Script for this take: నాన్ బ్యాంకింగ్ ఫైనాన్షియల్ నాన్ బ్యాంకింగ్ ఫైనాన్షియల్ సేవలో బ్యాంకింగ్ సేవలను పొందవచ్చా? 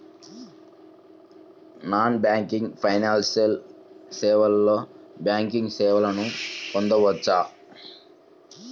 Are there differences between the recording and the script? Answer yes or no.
yes